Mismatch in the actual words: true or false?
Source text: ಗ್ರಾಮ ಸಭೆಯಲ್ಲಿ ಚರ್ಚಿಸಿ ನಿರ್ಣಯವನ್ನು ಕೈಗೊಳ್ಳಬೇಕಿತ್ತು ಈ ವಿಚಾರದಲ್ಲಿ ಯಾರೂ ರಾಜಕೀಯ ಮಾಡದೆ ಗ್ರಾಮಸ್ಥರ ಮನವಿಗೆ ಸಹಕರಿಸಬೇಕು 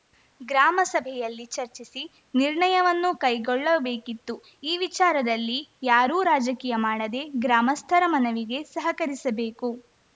false